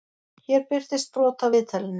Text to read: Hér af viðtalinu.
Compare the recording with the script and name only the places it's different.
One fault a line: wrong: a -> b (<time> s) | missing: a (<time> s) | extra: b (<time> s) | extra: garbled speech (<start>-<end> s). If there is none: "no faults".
extra: birtist brot (0.7 s)